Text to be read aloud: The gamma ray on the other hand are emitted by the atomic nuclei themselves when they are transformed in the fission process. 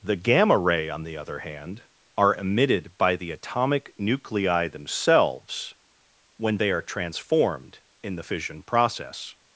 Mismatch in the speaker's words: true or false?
false